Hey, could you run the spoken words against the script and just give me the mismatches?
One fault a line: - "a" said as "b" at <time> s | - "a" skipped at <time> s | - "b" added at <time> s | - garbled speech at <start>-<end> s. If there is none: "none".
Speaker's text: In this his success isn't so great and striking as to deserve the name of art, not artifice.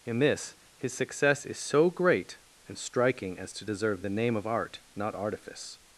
- "isn't" said as "is" at 1.4 s